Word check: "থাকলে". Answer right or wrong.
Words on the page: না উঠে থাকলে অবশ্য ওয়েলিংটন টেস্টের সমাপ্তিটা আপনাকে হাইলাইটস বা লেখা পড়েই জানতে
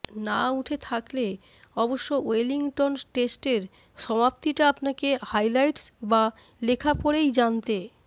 right